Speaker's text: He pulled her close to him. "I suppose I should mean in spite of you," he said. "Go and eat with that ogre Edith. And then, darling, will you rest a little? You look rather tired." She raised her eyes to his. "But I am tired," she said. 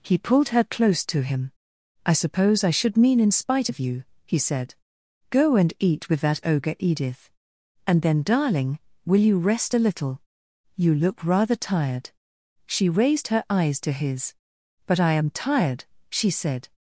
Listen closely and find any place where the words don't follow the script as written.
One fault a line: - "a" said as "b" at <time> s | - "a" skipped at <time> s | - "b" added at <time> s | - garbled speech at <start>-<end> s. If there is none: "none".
none